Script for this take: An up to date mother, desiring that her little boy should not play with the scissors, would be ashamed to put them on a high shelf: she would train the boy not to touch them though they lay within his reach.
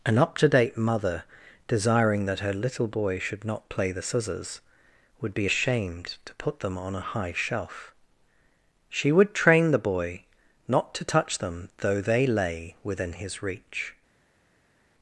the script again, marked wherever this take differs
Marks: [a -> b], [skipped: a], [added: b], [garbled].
An up to date mother, desiring that her little boy should not play [skipped: with] the scissors, would be ashamed to put them on a high shelf: she would train the boy not to touch them though they lay within his reach.